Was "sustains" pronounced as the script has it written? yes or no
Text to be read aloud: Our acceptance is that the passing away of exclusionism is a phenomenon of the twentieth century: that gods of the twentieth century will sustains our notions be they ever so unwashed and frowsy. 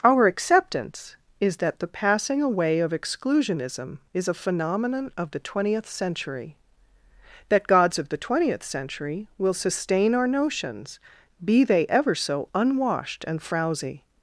no